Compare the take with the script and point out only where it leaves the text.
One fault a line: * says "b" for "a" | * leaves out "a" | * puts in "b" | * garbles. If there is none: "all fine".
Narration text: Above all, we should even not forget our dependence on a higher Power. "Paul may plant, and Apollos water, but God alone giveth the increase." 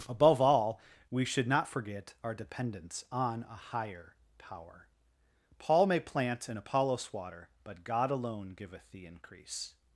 * leaves out "even"